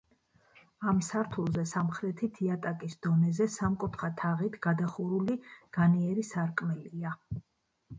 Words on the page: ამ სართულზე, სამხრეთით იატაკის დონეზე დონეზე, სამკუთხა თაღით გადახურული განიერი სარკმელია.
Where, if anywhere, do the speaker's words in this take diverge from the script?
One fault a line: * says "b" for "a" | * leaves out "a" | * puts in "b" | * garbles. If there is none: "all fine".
* leaves out "დონეზე"